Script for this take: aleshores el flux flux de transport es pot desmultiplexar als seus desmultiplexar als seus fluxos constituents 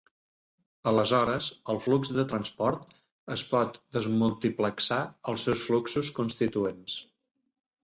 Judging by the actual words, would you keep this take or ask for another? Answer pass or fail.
fail